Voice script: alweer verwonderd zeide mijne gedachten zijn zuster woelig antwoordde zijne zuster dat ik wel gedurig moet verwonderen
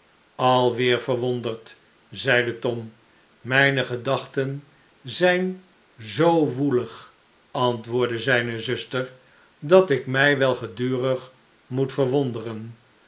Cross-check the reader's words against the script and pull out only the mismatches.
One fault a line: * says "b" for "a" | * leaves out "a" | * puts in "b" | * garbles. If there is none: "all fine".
* puts in "tom"
* says "zoo" for "zuster"
* puts in "mij"